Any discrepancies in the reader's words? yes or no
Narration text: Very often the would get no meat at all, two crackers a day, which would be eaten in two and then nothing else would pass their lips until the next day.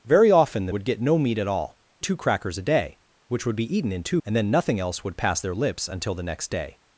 no